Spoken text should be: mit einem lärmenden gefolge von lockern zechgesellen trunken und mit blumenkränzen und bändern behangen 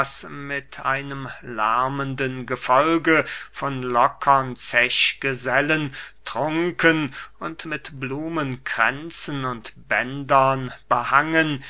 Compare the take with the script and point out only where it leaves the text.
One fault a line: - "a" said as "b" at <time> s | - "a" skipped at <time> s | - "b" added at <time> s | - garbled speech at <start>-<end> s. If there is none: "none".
none